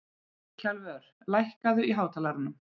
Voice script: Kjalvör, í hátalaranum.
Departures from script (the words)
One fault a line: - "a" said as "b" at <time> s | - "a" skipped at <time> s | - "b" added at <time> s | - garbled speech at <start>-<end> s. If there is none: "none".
- "lækkaðu" added at 1.4 s